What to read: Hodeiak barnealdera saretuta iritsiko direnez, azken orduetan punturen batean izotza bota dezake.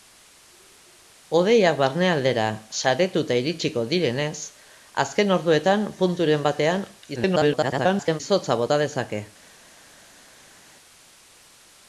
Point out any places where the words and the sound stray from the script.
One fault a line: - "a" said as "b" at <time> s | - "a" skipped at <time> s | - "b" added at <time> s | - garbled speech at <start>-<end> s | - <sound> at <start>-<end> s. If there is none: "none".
- garbled speech at 7.2-8.2 s